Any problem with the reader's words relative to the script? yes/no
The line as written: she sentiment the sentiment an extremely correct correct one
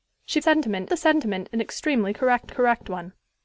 no